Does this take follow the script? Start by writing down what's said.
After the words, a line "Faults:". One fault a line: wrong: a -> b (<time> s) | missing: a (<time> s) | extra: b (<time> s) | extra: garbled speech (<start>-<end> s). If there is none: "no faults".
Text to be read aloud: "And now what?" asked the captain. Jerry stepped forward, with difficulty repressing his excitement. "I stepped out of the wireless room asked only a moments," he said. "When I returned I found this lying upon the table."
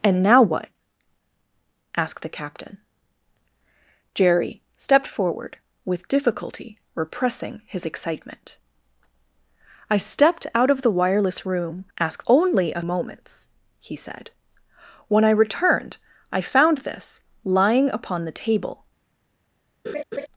"And now what?" asked the captain. Jerry stepped forward, with difficulty repressing his excitement. "I stepped out of the wireless room asked only a moments," he said. "When I returned I found this lying upon the table."
Faults:
no faults